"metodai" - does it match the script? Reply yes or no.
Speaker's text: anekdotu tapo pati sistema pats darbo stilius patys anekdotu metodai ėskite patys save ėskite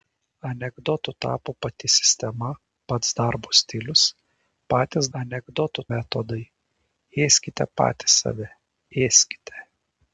yes